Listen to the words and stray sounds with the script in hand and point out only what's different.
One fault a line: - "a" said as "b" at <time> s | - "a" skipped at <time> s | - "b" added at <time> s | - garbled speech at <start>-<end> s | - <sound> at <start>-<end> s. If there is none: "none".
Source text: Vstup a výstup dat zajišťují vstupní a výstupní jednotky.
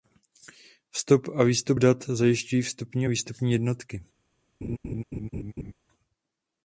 - laugh at 4.6-5.7 s